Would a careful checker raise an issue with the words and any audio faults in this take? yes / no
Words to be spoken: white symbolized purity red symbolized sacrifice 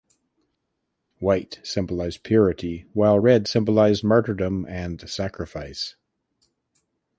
yes